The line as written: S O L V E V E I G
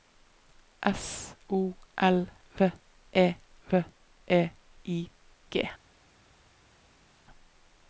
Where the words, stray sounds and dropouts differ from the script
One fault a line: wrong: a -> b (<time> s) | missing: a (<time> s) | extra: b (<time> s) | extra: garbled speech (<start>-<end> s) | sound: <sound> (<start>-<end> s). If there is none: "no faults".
no faults